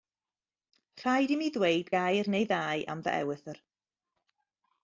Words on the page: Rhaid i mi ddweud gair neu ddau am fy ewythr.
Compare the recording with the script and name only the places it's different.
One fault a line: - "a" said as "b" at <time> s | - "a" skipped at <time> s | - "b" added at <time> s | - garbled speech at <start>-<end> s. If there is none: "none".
none